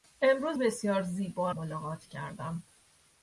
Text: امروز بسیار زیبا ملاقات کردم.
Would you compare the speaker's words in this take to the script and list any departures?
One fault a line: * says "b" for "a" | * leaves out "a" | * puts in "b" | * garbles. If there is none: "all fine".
all fine